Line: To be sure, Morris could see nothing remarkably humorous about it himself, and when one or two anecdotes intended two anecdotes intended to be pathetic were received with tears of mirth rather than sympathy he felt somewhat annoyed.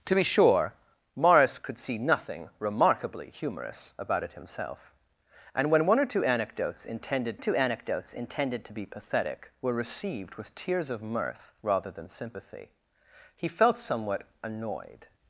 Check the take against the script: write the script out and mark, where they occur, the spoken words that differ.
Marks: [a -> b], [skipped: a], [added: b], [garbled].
To be sure, Morris could see nothing remarkably humorous about it himself, and when one or two anecdotes intended two anecdotes intended to be pathetic were received with tears of mirth rather than sympathy he felt somewhat annoyed.